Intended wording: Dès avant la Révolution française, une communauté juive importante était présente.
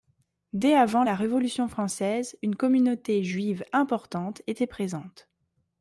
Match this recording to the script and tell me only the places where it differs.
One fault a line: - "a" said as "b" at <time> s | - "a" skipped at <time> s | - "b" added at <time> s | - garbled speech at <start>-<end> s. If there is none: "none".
none